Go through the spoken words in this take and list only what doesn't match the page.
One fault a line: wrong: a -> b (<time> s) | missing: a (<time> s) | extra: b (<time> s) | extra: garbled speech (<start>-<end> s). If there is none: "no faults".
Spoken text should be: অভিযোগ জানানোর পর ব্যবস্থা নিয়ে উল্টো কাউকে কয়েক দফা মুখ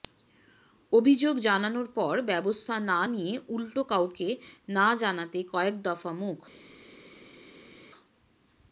extra: না (2.9 s)
extra: না জানাতে (4.7 s)